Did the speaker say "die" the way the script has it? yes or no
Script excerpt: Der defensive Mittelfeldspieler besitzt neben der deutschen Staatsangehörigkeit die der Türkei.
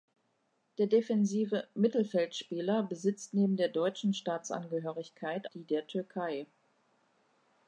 yes